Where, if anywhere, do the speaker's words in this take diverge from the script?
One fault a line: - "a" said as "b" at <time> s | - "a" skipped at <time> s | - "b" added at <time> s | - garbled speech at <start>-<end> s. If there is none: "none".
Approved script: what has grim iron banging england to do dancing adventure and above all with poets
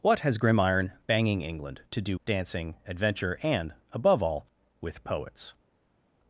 none